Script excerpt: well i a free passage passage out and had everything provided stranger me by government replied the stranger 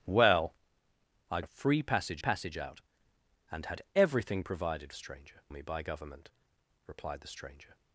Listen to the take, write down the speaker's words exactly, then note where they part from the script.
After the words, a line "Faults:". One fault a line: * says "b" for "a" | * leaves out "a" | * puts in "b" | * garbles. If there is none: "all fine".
well i a free passage passage out and had everything provided stranger me by government replied the stranger
Faults:
all fine